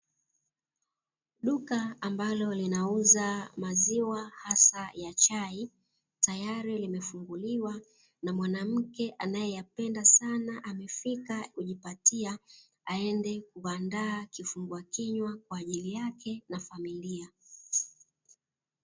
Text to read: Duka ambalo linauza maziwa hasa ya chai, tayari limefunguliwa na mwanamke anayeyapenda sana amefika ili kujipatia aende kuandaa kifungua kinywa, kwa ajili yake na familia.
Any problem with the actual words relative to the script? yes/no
yes